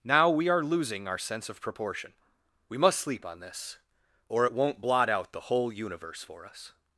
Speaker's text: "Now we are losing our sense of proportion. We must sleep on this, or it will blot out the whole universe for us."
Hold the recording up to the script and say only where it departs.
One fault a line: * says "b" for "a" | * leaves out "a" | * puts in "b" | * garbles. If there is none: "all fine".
* says "won't" for "will"